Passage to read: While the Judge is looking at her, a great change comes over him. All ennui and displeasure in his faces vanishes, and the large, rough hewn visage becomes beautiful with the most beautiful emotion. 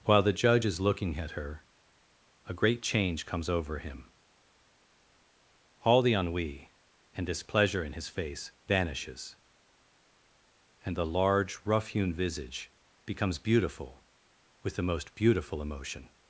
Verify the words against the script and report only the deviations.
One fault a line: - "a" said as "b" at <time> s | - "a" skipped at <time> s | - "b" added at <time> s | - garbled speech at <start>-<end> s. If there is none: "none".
- "the" added at 6.0 s
- "faces" said as "face" at 8.1 s